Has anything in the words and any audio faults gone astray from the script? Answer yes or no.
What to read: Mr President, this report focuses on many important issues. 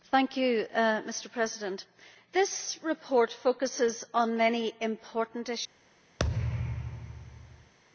yes